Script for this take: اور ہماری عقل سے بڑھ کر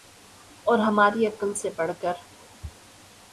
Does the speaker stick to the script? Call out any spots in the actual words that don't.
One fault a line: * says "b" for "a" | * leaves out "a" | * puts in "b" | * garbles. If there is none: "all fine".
all fine